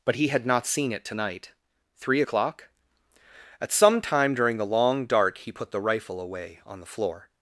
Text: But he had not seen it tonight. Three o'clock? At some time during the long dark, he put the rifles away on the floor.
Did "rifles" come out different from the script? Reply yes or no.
yes